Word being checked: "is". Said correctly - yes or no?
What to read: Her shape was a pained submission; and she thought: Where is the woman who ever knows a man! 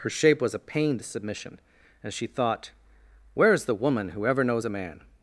yes